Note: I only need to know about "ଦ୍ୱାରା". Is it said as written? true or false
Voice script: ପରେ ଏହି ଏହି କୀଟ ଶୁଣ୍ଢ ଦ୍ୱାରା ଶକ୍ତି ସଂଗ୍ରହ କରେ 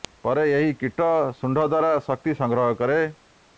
true